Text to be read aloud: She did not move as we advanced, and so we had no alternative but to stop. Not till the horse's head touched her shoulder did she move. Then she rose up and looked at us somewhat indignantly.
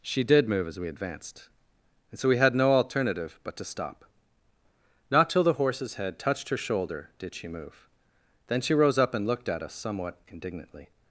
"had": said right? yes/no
yes